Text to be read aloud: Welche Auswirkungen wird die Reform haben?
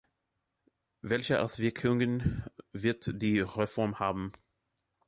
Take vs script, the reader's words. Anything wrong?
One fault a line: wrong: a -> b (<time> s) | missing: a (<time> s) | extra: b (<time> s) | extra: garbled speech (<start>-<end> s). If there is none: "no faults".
no faults